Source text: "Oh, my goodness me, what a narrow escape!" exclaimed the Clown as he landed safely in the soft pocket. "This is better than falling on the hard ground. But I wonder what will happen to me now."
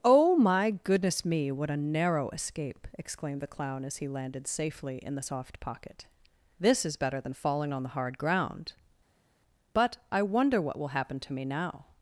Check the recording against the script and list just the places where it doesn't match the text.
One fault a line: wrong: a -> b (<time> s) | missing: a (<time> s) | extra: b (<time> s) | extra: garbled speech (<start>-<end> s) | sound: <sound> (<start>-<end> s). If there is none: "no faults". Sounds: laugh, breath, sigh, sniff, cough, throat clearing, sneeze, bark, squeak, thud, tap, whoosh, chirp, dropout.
no faults